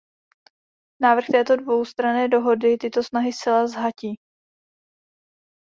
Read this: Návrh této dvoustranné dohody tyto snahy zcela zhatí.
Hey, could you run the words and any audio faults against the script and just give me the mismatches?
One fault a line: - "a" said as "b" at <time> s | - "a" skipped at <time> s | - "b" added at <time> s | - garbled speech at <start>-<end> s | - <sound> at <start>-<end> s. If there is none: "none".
none